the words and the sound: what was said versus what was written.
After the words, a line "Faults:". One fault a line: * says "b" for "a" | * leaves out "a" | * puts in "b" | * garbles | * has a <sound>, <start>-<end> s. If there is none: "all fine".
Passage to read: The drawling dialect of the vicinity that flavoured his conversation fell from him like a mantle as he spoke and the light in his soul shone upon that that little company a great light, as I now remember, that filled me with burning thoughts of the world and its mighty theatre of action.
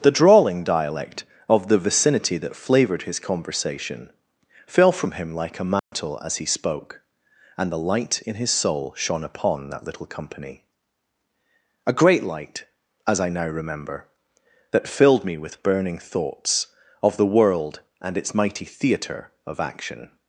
The drawling dialect of the vicinity that flavoured his conversation fell from him like a mantle as he spoke and the light in his soul shone upon that little company a great light, as I now remember, that filled me with burning thoughts of the world and its mighty theatre of action.
Faults:
* has a dropout, 5.8-5.9 s
* leaves out "that"